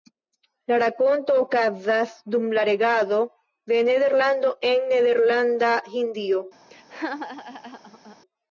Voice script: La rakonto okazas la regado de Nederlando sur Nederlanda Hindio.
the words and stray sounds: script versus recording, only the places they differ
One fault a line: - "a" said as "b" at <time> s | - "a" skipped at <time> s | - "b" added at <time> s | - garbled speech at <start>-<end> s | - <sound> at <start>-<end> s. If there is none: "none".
- "dum" added at 2.4 s
- "sur" said as "en" at 4.7 s
- laugh at 6.7-8.2 s